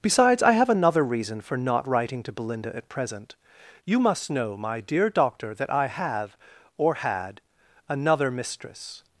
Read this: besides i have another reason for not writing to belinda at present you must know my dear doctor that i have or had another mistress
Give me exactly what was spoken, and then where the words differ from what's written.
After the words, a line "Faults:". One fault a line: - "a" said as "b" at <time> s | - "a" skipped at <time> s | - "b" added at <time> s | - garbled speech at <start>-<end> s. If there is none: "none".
besides i have another reason for not writing to belinda at present you must know my dear doctor that i have or had another mistress
Faults:
none